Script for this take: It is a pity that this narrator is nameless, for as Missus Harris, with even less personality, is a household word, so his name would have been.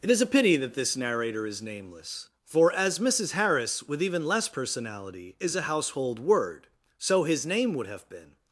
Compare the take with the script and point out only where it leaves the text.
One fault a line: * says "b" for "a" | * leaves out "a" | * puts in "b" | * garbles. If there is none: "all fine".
all fine